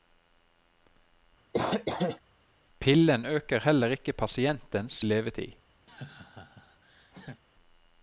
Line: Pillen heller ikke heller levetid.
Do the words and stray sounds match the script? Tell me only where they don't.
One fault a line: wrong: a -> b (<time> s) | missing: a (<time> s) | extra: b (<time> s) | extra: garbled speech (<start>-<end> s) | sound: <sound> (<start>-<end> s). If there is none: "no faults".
sound: cough (1.5-2.2 s)
extra: øker (3.2 s)
wrong: heller -> pasientens (4.1 s)
sound: laugh (5.9-7.4 s)